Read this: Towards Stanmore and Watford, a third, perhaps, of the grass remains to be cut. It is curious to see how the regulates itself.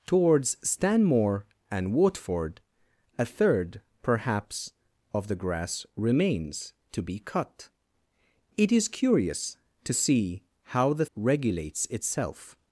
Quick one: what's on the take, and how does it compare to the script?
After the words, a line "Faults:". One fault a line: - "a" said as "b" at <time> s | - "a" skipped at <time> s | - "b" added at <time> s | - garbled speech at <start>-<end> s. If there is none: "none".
Towards Stanmore and Watford, a third, perhaps, of the grass remains to be cut. It is curious to see how the regulates itself.
Faults:
none